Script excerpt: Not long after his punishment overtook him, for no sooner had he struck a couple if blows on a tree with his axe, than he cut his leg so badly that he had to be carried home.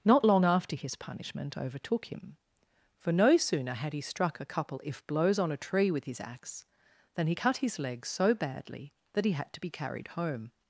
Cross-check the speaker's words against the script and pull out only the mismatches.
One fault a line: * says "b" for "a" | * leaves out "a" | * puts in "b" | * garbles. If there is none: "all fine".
all fine